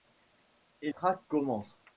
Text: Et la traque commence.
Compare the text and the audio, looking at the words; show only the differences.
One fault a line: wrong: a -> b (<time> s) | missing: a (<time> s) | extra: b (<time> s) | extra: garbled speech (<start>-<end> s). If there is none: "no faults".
missing: la (0.9 s)